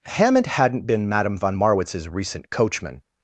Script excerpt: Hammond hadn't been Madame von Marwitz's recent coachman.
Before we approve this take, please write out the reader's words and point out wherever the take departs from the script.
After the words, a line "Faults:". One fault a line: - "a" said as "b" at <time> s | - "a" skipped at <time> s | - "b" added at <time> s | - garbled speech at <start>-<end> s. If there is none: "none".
Hammond hadn't been Madame von Marwitz's recent coachman.
Faults:
none